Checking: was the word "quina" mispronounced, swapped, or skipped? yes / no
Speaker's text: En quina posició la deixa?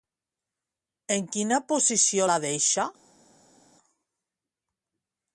no